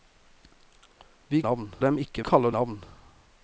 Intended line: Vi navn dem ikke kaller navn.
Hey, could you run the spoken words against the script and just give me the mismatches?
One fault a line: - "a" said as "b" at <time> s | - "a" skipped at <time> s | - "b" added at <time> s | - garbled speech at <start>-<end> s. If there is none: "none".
none